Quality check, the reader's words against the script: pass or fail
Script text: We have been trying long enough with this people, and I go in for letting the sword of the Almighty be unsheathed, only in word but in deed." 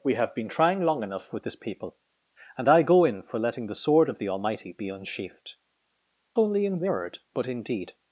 pass